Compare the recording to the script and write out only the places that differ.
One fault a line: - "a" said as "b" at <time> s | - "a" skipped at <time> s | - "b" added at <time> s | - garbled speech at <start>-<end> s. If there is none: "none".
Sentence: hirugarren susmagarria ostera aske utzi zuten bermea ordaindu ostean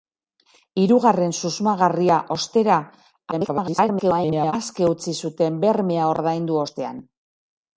- garbled speech at 3.3-4.5 s